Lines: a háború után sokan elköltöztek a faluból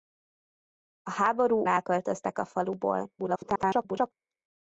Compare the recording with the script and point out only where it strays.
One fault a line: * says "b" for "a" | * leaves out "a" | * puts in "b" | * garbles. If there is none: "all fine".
* leaves out "után sokan"
* garbles